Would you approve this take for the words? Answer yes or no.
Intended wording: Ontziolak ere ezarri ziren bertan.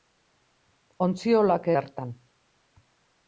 no